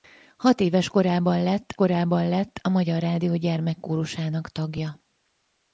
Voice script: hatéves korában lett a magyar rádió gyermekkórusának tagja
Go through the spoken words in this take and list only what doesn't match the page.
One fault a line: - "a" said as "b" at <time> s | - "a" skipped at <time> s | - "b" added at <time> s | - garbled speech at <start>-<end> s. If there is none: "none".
- "korában lett" added at 1.7 s